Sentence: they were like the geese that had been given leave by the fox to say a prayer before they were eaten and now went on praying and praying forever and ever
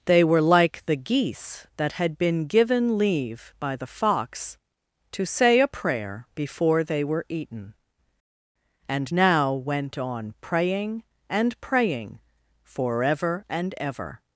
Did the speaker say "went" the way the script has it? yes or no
yes